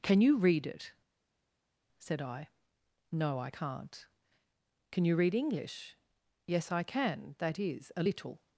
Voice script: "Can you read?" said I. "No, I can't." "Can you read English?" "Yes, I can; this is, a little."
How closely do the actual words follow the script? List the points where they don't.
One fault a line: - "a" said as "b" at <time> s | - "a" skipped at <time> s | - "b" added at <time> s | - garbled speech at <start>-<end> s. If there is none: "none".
- "it" added at 0.7 s
- "this" said as "that" at 7.4 s